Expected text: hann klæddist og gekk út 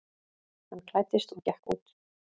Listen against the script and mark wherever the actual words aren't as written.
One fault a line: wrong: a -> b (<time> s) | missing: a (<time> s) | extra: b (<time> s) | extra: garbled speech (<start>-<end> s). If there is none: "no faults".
no faults